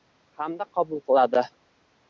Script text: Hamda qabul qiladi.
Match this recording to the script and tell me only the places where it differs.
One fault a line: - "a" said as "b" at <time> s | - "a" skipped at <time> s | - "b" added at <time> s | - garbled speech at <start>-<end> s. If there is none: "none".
none